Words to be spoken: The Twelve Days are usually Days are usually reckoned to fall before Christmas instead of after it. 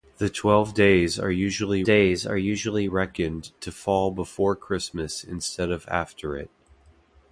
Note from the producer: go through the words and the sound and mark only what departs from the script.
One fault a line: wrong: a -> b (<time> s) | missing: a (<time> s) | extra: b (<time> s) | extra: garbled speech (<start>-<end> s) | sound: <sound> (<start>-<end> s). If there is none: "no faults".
no faults